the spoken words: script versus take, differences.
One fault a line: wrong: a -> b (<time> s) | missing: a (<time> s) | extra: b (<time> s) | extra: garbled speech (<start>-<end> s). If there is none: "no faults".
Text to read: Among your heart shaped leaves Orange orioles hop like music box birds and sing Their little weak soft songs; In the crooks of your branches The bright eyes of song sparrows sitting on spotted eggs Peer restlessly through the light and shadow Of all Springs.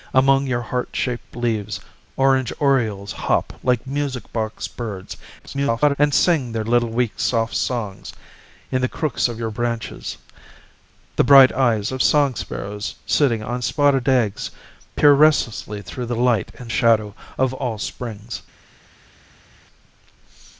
extra: garbled speech (5.4-6.0 s)